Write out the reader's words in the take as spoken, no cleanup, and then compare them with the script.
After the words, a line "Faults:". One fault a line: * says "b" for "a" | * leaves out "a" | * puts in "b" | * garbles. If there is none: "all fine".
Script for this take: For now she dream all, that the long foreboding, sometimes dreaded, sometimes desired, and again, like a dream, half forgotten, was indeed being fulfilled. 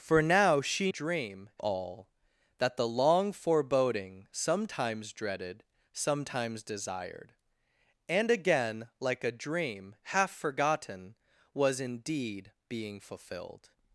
For now she dream all, that the long foreboding, sometimes dreaded, sometimes desired, and again, like a dream, half forgotten, was indeed being fulfilled.
Faults:
all fine